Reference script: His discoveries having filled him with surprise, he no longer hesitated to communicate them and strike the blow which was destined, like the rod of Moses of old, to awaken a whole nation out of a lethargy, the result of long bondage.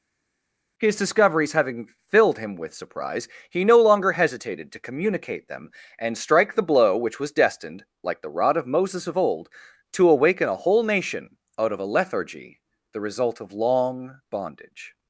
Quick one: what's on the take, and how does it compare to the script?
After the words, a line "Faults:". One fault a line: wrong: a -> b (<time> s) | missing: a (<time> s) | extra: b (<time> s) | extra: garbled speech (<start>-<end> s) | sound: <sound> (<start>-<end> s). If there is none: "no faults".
His discoveries having filled him with surprise, he no longer hesitated to communicate them and strike the blow which was destined, like the rod of Moses of old, to awaken a whole nation out of a lethargy, the result of long bondage.
Faults:
no faults